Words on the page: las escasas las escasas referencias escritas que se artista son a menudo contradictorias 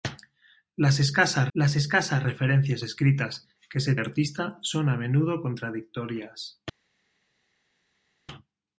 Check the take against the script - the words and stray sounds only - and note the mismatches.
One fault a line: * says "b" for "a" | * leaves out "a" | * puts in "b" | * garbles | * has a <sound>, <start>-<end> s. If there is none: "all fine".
all fine